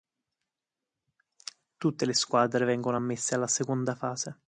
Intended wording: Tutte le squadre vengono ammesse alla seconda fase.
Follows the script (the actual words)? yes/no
yes